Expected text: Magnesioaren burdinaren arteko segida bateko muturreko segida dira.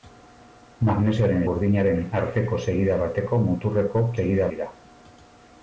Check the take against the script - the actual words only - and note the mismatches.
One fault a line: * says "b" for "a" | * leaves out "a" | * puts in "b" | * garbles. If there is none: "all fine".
all fine